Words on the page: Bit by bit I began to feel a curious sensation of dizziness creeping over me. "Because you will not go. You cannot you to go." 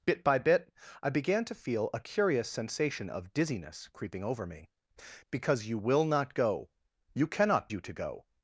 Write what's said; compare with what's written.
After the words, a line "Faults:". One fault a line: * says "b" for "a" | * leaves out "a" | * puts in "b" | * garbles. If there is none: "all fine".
Bit by bit I began to feel a curious sensation of dizziness creeping over me. "Because you will not go. You cannot you to go."
Faults:
all fine